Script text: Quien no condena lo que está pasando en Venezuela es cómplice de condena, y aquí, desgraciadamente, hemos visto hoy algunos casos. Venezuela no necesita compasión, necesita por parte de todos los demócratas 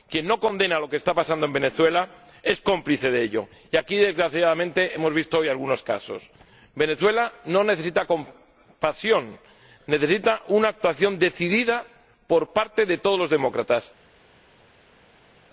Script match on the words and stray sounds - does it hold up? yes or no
no